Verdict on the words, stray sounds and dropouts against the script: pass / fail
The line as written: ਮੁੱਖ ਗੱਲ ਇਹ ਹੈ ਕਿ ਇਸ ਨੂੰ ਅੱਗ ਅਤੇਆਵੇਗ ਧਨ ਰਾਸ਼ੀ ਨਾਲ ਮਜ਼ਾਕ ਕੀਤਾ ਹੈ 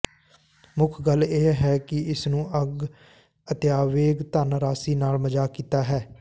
pass